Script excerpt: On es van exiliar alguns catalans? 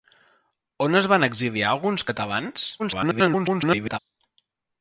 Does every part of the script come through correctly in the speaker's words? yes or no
no